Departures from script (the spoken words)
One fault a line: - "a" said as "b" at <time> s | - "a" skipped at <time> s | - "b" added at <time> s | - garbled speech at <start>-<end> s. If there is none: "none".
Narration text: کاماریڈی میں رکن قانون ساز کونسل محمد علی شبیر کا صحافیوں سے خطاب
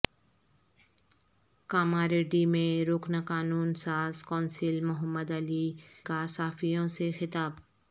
- "شبیر" skipped at 5.7 s